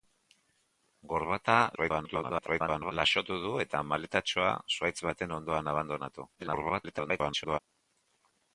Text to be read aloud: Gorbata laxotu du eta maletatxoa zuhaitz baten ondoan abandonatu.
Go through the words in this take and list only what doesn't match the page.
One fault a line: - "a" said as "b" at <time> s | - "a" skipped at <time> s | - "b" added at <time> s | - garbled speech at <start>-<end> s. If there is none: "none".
- garbled speech at 1.7-2.9 s
- garbled speech at 6.4-7.6 s